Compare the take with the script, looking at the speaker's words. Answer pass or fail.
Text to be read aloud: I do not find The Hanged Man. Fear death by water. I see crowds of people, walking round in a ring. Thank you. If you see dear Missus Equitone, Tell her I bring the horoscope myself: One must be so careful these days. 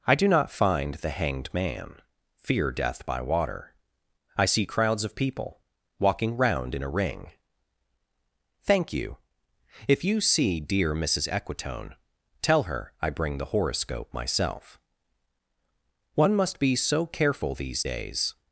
pass